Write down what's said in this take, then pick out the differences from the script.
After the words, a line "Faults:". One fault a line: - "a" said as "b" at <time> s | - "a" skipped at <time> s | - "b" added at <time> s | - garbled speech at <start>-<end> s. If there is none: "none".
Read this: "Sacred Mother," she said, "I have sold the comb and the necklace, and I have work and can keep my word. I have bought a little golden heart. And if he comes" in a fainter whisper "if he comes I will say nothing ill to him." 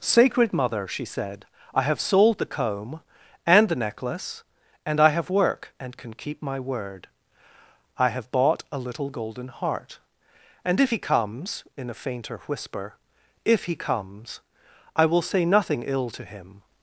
"Sacred Mother," she said, "I have sold the comb and the necklace, and I have work and can keep my word. I have bought a little golden heart. And if he comes" in a fainter whisper "if he comes I will say nothing ill to him."
Faults:
none